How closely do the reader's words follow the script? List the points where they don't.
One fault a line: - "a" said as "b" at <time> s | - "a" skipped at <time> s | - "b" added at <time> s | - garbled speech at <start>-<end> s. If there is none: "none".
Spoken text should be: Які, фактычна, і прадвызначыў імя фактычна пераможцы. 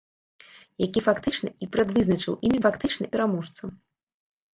none